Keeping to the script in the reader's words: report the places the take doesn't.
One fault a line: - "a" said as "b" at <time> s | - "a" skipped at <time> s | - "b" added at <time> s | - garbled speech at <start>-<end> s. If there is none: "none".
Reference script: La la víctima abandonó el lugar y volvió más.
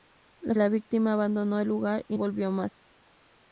none